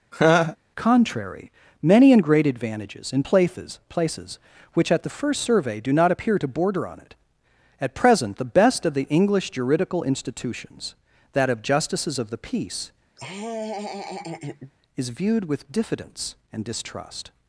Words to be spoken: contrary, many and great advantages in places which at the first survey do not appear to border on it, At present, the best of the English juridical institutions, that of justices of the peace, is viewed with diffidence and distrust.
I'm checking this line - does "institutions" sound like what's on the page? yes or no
yes